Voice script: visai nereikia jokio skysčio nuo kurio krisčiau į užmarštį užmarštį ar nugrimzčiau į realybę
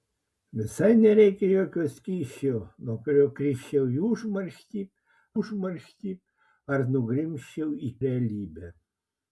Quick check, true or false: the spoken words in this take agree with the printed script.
true